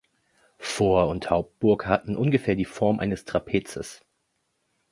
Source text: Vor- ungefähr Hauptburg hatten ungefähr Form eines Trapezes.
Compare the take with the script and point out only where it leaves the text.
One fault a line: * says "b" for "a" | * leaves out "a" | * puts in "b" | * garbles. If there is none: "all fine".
* says "und" for "ungefähr"
* puts in "die"